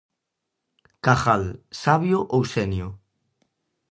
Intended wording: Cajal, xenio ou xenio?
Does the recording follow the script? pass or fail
fail